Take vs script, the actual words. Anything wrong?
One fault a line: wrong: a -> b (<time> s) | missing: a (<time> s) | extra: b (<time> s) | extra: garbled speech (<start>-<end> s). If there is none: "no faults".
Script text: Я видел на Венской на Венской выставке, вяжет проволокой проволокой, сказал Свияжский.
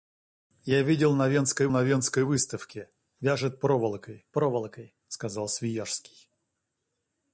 no faults